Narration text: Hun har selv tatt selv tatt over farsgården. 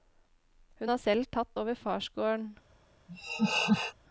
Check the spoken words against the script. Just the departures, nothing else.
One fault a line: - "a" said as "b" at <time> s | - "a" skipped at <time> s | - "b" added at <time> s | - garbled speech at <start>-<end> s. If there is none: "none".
- "selv tatt" skipped at 1.6 s